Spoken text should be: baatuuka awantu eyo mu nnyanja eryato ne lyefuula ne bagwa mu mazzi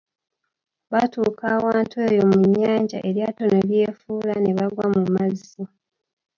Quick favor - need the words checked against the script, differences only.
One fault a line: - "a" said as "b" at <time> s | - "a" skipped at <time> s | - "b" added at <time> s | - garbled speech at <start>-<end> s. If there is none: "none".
none